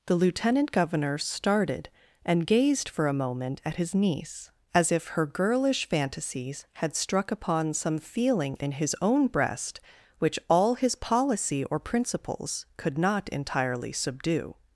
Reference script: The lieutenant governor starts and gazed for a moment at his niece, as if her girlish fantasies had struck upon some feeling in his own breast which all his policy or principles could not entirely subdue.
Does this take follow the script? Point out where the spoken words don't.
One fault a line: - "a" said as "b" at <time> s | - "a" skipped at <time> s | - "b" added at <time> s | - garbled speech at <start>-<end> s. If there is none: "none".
- "starts" said as "started" at 1.2 s